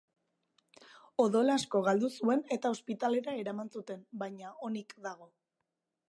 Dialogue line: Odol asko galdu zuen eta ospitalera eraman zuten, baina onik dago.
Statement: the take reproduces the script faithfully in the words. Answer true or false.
true